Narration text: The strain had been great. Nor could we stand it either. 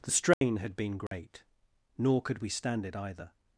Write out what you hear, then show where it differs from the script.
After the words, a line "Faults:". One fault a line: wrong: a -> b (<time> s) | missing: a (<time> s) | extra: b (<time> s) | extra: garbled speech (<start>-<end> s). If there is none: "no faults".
The strain had been great. Nor could we stand it either.
Faults:
no faults